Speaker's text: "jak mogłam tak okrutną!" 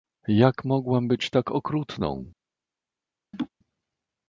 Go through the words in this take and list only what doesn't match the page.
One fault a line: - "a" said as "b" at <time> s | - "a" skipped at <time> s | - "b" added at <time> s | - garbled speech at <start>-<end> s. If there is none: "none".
- "być" added at 1.1 s